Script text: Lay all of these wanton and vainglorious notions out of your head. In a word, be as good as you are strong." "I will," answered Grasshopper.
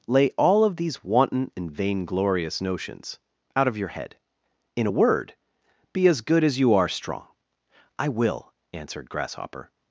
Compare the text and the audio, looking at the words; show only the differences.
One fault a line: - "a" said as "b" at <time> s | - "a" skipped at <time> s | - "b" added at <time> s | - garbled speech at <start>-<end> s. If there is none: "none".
none